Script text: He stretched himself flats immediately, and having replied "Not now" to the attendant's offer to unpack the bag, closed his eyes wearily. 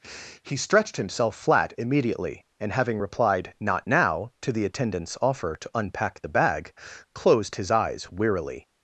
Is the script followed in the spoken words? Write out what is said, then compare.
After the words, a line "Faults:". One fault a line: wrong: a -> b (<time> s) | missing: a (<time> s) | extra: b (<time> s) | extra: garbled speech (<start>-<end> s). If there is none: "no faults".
He stretched himself flat immediately, and having replied "Not now" to the attendant's offer to unpack the bag, closed his eyes wearily.
Faults:
wrong: flats -> flat (1.4 s)